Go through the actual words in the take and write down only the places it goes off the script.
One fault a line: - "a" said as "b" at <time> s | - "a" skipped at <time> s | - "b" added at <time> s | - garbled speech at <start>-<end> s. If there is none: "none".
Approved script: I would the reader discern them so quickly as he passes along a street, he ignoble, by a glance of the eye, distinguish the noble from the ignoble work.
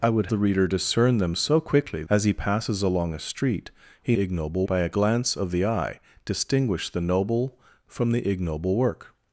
none